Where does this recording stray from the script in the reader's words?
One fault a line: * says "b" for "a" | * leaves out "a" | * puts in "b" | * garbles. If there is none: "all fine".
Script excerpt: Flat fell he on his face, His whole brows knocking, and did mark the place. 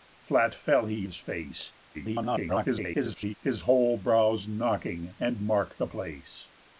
* leaves out "on"
* garbles
* leaves out "did"